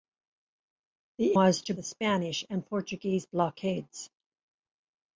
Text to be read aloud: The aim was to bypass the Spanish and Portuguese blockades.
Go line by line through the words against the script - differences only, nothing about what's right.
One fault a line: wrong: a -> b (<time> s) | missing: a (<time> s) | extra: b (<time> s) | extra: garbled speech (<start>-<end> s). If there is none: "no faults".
missing: aim (1.4 s)
missing: bypass (1.7 s)